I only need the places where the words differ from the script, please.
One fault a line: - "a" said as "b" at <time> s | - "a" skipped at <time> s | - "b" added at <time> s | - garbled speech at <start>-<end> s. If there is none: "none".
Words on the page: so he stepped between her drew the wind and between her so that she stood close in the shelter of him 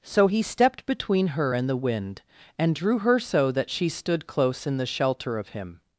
- "drew" said as "and" at 1.5 s
- "between" said as "drew" at 2.7 s